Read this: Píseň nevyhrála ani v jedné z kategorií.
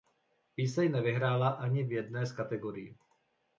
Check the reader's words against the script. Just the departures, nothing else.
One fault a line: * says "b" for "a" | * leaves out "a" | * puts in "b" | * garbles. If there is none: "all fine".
all fine